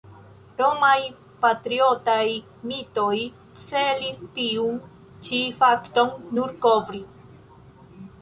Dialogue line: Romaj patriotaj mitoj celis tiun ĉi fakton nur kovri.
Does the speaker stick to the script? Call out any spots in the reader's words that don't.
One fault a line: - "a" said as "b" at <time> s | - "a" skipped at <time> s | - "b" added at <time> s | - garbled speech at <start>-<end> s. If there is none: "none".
none